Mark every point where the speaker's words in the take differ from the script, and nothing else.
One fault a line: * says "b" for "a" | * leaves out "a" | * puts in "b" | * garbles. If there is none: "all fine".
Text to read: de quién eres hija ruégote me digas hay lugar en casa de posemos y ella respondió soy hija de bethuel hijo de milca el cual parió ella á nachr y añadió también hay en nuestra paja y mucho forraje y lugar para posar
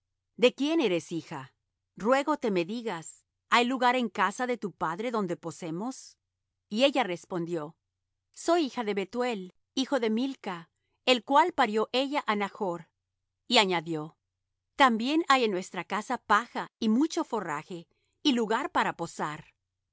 * puts in "tu padre donde"
* puts in "casa"